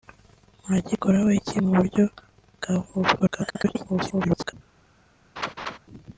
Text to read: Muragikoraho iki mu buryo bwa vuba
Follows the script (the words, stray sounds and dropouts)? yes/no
no